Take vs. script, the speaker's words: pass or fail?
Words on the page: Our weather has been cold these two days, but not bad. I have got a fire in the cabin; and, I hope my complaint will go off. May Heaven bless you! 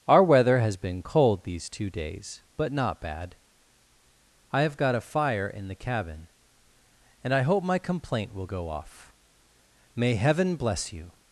pass